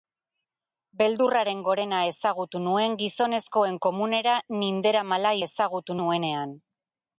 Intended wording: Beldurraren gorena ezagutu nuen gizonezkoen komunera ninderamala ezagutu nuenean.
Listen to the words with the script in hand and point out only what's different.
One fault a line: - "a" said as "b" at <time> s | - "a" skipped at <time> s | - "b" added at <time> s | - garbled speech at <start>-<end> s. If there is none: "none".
none